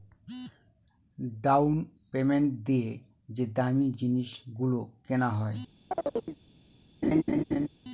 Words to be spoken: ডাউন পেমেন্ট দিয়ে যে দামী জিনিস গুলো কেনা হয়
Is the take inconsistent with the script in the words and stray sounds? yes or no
yes